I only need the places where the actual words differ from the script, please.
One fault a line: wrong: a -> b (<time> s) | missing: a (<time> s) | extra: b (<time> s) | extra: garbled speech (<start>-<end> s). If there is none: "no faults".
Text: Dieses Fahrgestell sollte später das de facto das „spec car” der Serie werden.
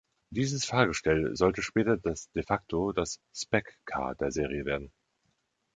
no faults